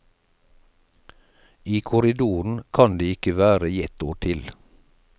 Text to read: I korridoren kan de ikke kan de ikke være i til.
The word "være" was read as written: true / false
false